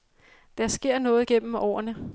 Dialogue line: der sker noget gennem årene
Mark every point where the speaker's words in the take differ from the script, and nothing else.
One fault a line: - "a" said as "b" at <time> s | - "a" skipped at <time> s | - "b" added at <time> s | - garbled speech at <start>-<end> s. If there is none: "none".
none